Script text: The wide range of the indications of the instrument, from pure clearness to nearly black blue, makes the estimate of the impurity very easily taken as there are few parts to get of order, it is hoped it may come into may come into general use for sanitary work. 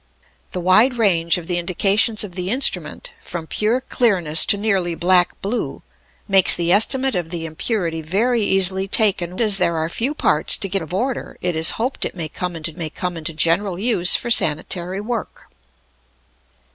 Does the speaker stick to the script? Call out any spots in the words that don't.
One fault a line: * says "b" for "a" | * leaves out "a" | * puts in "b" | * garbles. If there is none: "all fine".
all fine